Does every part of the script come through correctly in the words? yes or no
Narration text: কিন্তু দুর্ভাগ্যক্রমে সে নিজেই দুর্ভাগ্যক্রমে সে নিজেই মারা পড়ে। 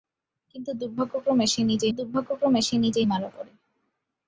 yes